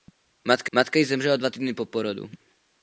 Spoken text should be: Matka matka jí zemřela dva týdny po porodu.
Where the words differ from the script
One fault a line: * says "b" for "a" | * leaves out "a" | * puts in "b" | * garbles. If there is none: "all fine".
all fine